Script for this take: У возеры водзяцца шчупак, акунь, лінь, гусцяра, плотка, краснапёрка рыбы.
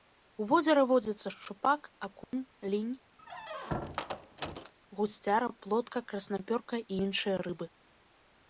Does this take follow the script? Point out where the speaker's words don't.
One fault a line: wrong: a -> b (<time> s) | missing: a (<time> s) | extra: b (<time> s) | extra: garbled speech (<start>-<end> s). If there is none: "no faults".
extra: і іншыя (6.8 s)